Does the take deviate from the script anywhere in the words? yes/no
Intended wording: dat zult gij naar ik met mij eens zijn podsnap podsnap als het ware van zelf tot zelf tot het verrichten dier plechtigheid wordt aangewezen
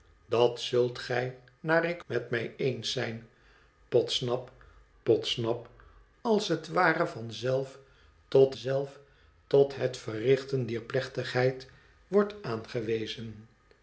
no